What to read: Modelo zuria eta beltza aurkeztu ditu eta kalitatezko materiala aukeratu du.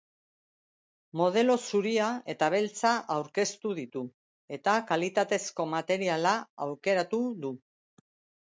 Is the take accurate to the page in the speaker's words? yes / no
yes